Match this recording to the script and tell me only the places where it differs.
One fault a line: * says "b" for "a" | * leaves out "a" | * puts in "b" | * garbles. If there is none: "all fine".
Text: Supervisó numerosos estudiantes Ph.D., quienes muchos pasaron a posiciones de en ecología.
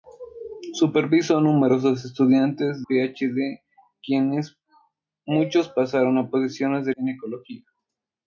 all fine